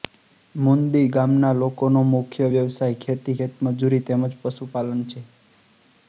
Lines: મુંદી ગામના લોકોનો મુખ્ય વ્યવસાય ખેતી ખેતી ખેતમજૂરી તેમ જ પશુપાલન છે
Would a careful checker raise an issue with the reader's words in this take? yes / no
yes